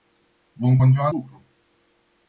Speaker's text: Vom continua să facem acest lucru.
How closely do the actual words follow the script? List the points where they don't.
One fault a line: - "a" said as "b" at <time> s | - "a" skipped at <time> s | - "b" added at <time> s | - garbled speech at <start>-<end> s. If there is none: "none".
- "să facem acest" skipped at 1.1 s